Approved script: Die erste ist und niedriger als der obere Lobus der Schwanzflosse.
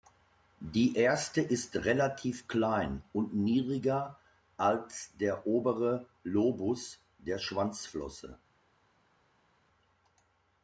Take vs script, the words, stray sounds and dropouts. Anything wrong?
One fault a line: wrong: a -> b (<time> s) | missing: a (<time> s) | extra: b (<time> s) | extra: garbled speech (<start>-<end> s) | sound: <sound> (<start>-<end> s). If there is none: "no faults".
extra: relativ klein (1.8 s)